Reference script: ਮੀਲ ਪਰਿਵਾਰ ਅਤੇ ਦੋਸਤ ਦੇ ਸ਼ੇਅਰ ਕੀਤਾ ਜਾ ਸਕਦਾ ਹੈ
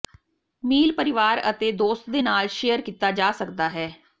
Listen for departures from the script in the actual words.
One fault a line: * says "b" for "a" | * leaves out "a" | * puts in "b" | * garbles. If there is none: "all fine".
* puts in "ਨਾਲ"